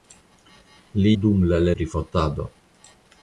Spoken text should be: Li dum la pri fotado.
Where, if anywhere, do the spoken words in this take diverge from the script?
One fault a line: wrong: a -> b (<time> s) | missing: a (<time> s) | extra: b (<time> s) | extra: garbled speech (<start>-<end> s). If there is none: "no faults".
no faults